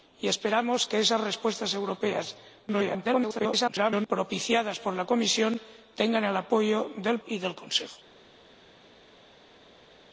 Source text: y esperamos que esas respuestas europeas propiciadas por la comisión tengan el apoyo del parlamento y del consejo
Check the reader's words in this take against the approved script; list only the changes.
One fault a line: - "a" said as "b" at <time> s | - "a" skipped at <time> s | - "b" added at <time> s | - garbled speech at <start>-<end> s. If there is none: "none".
- garbled speech at 2.7-4.1 s
- "parlamento" skipped at 7.2 s